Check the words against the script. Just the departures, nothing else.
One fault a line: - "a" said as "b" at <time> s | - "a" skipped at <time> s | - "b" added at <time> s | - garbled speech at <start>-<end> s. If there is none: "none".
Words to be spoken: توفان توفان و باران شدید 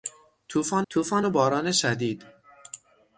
none